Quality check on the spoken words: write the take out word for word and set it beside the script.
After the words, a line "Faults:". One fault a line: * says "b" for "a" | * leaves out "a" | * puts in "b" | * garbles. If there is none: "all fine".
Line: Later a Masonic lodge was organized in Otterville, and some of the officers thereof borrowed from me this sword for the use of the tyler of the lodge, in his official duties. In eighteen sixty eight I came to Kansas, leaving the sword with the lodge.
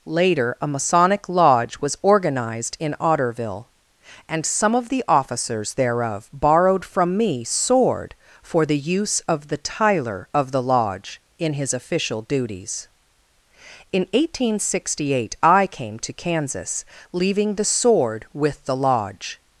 Later a Masonic lodge was organized in Otterville, and some of the officers thereof borrowed from me sword for the use of the tyler of the lodge, in his official duties. In eighteen sixty eight I came to Kansas, leaving the sword with the lodge.
Faults:
* leaves out "this"